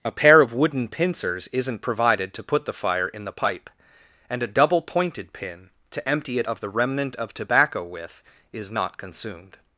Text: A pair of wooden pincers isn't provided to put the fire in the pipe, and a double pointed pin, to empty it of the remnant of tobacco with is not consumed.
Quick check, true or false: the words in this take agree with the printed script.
true